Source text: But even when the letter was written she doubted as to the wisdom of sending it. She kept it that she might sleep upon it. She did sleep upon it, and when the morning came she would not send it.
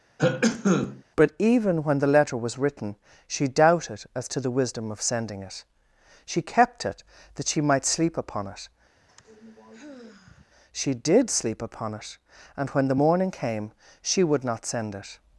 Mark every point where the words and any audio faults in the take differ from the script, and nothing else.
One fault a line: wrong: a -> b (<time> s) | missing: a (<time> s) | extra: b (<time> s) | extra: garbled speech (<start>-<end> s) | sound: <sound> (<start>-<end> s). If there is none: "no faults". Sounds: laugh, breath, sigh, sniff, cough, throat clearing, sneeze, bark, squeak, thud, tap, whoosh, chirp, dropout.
sound: cough (0.2-1.0 s)
sound: sigh (8.9-10.5 s)